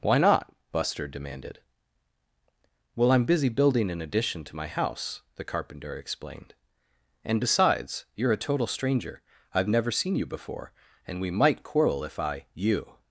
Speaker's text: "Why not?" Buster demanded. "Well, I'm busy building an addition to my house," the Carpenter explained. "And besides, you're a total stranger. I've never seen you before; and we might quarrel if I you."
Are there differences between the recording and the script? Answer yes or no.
no